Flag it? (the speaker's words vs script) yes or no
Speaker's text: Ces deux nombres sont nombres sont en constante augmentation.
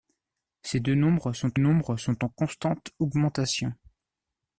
no